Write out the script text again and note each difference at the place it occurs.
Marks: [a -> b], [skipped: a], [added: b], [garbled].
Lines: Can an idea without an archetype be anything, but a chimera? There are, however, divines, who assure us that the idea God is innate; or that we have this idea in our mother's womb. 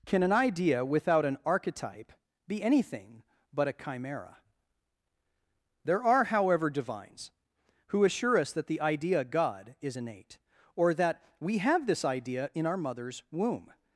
Can an idea without an archetype be anything, but a chimera? There are, however, divines, who assure us that the idea God is innate; or that we have this idea in our mother's womb.